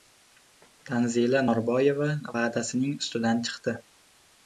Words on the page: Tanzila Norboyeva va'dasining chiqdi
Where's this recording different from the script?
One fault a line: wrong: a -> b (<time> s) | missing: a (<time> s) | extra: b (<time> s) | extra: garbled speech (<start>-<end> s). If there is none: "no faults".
extra: ustidan (3.0 s)